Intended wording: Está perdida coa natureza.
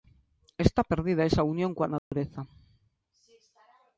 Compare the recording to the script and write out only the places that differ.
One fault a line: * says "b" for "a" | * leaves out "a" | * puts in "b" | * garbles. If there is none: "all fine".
* puts in "esa unión"